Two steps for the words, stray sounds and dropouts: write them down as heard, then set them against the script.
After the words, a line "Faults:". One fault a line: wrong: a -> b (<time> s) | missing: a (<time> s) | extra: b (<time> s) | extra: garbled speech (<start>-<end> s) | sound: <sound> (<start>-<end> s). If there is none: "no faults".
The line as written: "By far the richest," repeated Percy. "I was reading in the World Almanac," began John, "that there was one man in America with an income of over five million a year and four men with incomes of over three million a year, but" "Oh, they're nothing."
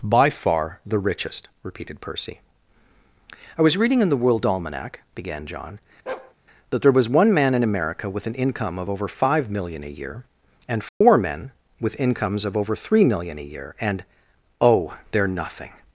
"By far the richest," repeated Percy. "I was reading in the World Almanac," began John, "that there was one man in America with an income of over five million a year and four men with incomes of over three million a year, and" "Oh, they're nothing."
Faults:
sound: bark (6.1-6.3 s)
sound: dropout (10.9-11.0 s)
wrong: but -> and (13.8 s)